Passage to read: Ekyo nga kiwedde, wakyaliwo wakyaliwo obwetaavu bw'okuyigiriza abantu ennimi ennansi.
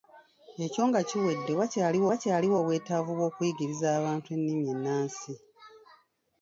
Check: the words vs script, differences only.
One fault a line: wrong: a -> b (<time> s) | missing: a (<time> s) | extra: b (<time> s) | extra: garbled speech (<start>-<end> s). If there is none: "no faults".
no faults